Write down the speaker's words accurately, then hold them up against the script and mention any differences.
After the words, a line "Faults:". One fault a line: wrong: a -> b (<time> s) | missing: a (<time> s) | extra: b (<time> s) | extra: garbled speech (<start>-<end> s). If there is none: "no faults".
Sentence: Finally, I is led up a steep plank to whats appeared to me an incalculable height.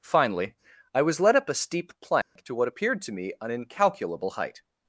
Finally, I was led up a steep plank to what appeared to me an incalculable height.
Faults:
wrong: is -> was (1.0 s)
wrong: whats -> what (2.5 s)